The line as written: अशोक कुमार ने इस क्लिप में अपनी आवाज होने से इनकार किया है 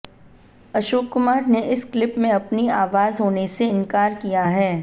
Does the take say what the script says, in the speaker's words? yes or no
yes